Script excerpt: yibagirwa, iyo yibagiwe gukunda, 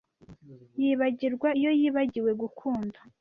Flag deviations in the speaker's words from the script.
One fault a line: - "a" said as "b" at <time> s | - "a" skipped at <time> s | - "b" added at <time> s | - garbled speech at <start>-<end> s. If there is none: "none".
none